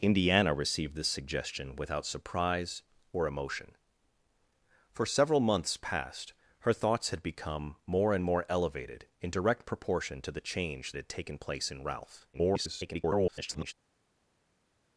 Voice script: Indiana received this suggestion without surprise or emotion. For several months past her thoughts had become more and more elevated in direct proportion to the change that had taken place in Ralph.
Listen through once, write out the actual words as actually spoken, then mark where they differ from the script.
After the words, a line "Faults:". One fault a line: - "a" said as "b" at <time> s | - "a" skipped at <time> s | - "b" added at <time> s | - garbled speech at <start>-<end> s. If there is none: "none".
Indiana received this suggestion without surprise or emotion. For several months past her thoughts had become more and more elevated in direct proportion to the change had taken place in Ralph. [garbled]
Faults:
- "that" skipped at 10.9 s
- garbled speech at 12.3-13.7 s